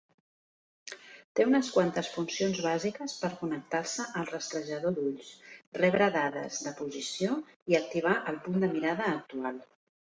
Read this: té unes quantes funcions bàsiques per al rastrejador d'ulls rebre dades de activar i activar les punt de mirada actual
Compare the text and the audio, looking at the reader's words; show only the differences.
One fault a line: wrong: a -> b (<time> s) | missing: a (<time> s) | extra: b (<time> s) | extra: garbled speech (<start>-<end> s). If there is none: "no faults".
extra: connectar se (3.4 s)
wrong: activar -> posició (6.8 s)
wrong: les -> el (8.3 s)